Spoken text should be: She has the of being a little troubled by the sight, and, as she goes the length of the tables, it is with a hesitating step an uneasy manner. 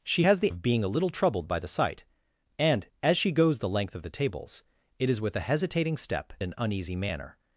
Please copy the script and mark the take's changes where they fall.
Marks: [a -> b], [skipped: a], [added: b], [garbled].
She has the of being a little troubled by the sight, and, as she goes the length of the tables, it is with a hesitating step an uneasy manner.